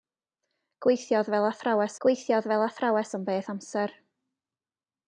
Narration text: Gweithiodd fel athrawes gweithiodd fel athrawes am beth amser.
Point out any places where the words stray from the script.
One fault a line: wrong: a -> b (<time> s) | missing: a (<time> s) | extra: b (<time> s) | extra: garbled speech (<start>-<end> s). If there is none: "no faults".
no faults